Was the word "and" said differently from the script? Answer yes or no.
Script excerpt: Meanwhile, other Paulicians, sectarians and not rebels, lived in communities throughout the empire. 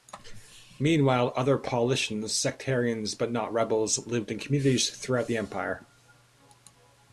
yes